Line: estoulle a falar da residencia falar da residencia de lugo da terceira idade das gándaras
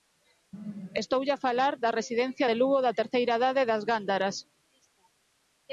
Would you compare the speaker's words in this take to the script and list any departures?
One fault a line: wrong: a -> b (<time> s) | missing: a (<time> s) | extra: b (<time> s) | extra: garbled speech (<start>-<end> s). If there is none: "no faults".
missing: falar da residencia (2.5 s)